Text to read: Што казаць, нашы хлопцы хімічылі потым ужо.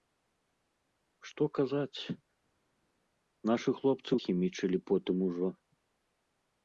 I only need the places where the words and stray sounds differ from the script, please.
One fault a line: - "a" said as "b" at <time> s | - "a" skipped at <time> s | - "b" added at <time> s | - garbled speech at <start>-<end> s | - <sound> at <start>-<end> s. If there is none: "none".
none